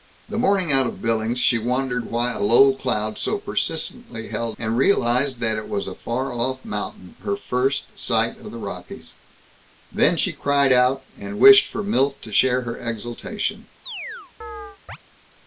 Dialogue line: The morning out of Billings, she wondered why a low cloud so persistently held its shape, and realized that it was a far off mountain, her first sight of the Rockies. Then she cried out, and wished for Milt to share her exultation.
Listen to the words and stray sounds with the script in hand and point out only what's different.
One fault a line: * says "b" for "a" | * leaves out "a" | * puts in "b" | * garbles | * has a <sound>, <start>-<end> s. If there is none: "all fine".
* leaves out "its shape"
* has a chirp, 13.9-15.0 s